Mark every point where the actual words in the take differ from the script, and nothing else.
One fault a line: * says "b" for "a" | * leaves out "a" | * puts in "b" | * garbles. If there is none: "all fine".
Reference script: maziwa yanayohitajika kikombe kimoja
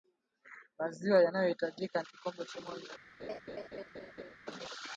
all fine